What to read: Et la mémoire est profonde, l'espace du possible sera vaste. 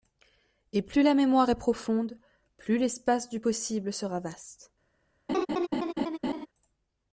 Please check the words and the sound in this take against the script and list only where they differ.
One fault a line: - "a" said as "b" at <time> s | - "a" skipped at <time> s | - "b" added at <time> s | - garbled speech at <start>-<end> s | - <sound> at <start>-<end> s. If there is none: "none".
- "plus" added at 0.8 s
- "plus" added at 2.5 s
- laugh at 5.3-6.5 s